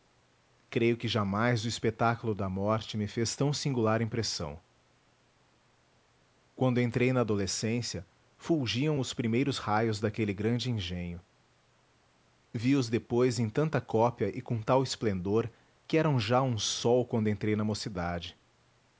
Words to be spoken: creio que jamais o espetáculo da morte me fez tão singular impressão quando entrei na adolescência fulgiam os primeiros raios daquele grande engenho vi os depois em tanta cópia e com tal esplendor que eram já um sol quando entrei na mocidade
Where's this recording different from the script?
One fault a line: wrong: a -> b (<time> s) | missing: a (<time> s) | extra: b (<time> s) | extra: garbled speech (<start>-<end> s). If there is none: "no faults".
no faults